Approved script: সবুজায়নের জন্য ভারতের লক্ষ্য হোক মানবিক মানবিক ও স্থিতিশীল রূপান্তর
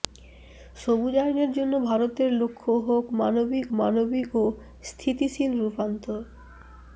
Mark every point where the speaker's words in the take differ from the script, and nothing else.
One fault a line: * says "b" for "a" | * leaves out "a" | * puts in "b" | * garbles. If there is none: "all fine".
all fine